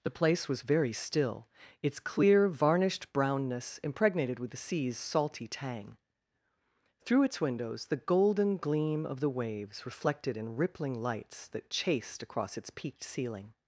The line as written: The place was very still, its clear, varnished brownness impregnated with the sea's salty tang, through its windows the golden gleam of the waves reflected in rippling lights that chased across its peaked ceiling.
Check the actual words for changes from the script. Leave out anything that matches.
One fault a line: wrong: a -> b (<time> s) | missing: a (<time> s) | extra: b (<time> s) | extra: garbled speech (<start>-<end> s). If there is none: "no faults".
no faults